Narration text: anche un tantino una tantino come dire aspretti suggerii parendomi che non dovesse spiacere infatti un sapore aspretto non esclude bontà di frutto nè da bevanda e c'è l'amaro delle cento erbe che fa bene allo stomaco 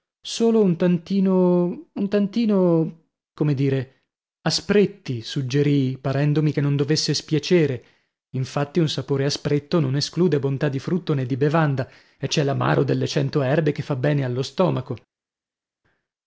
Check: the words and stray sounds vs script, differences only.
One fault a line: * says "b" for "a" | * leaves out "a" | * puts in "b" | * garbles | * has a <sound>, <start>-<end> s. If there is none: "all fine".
* says "solo" for "anche"
* says "un" for "una"
* says "di" for "da"